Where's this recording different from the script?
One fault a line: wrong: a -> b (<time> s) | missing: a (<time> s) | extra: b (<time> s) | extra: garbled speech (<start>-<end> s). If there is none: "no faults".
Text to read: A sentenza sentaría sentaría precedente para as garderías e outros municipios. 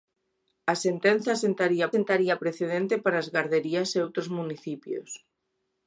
no faults